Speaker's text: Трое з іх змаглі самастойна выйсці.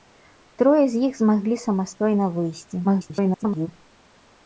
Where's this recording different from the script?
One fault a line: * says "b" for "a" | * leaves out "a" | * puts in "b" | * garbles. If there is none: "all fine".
* garbles